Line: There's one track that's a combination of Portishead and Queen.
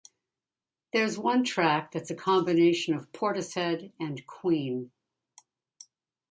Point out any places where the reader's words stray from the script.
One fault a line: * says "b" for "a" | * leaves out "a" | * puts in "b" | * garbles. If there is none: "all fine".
all fine